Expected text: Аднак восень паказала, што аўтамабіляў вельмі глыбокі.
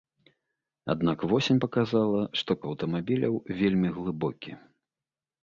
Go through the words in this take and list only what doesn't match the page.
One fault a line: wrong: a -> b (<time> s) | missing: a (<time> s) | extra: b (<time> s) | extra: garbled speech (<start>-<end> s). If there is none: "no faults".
no faults